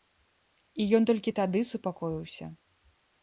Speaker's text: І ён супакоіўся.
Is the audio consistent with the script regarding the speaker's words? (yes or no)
no